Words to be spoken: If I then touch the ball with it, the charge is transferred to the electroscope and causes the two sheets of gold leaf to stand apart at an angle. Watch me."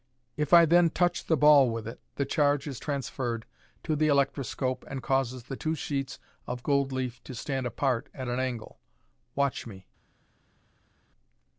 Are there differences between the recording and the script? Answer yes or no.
no